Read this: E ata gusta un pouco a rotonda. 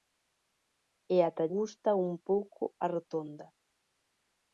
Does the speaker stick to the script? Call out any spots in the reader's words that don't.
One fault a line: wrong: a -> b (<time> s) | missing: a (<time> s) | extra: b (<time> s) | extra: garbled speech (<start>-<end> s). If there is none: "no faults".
no faults